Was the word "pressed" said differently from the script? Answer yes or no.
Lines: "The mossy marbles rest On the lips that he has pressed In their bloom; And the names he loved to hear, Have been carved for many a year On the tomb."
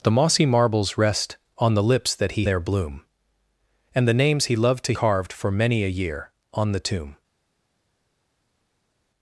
yes